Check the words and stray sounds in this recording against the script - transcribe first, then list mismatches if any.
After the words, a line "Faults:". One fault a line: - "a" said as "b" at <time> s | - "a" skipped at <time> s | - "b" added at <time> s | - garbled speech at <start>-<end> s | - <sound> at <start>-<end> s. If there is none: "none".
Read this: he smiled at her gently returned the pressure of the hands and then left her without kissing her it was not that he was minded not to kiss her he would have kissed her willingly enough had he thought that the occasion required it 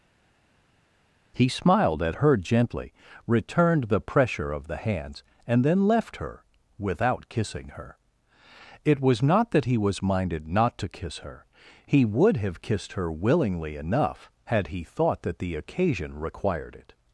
he smiled at her gently returned the pressure of the hands and then left her without kissing her it was not that he was minded not to kiss her he would have kissed her willingly enough had he thought that the occasion required it
Faults:
none